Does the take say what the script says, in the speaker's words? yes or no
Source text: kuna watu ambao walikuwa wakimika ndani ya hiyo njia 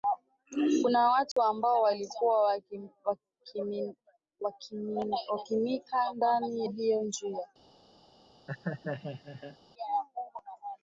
no